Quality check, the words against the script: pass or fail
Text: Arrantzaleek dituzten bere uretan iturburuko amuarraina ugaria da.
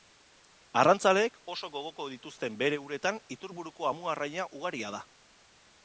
fail